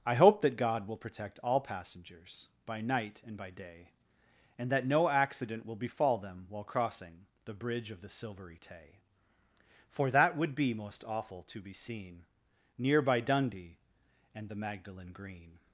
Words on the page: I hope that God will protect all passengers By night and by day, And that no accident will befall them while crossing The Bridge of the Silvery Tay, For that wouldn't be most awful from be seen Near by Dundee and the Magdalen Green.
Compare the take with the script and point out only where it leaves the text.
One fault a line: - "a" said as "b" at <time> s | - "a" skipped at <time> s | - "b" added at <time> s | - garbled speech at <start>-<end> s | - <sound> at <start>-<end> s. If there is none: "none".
- "wouldn't" said as "would" at 10.3 s
- "from" said as "to" at 11.4 s